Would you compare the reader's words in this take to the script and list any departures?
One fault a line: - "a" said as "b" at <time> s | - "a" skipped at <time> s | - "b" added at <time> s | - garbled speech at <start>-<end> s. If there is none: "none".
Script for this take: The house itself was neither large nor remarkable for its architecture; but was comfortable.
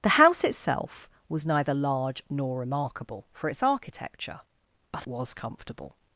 none